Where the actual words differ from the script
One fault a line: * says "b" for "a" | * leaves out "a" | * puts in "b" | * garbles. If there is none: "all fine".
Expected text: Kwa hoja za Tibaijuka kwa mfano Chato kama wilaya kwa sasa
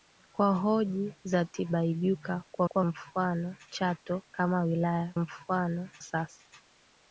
* puts in "kwa"
* says "mfano" for "kwa"